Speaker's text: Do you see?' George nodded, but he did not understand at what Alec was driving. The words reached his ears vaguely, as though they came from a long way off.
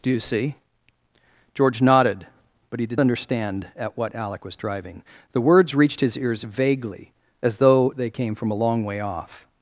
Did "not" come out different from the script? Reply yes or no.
yes